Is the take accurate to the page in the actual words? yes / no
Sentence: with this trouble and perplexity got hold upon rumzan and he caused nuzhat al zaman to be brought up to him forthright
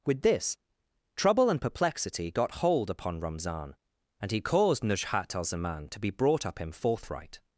no